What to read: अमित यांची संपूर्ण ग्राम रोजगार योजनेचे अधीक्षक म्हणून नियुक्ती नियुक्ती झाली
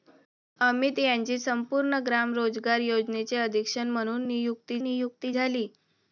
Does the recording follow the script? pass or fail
pass